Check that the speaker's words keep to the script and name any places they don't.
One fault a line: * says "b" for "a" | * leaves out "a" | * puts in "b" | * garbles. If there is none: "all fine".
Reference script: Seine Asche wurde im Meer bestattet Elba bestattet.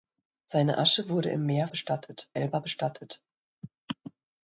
all fine